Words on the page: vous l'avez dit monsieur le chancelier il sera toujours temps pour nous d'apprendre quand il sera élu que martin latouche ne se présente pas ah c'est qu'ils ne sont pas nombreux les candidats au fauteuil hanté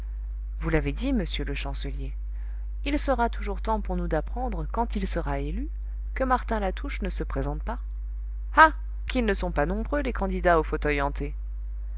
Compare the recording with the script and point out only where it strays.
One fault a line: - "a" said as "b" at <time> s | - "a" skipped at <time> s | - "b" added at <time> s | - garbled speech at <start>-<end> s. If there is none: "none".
- "c'est" skipped at 8.7 s